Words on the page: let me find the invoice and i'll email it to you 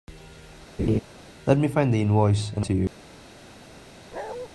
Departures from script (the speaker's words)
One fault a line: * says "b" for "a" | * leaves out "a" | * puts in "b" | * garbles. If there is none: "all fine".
* leaves out "i'll email it"